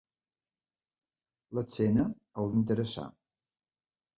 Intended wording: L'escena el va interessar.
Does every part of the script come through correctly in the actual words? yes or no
no